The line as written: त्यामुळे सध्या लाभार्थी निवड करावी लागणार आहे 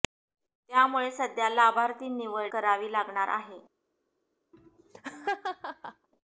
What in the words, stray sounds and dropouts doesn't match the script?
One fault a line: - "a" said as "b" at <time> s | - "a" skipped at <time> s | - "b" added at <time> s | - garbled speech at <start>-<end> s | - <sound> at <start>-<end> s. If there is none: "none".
- laugh at 4.5-6.1 s